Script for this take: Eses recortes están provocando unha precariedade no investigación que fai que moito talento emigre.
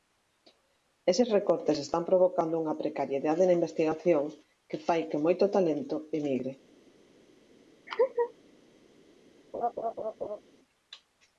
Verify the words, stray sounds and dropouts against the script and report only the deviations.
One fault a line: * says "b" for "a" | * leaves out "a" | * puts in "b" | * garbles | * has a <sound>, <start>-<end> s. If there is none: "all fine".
* says "na" for "no"
* has a laugh, 7.9-8.3 s
* has a laugh, 9.5-10.4 s